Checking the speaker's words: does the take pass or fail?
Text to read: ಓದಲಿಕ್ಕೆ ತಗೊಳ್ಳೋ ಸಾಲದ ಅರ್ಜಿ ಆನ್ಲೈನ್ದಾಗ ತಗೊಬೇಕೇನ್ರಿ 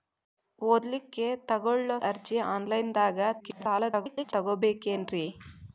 fail